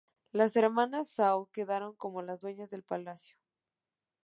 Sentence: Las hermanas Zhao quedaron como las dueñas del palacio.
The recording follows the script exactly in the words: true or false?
true